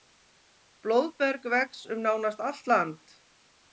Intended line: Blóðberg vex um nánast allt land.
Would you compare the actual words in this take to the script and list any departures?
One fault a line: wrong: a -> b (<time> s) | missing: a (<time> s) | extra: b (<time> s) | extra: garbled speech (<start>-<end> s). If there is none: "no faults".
no faults